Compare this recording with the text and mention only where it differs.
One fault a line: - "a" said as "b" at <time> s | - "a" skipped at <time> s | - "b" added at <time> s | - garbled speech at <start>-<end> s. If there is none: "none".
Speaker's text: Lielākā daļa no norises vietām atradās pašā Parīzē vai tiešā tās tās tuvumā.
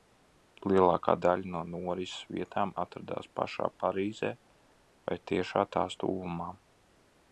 - "tās" skipped at 6.0 s